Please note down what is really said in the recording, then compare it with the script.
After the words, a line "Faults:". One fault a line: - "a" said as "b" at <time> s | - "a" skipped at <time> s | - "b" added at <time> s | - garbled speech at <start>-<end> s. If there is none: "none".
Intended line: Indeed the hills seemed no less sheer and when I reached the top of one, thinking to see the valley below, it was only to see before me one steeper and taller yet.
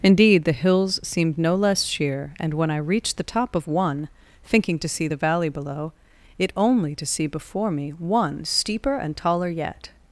Indeed the hills seemed no less sheer and when I reached the top of one, thinking to see the valley below, it only to see before me one steeper and taller yet.
Faults:
- "was" skipped at 6.5 s